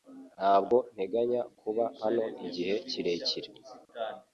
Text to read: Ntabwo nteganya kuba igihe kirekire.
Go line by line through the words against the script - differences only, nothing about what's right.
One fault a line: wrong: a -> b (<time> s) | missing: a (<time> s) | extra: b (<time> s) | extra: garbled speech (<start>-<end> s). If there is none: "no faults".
extra: hano (2.0 s)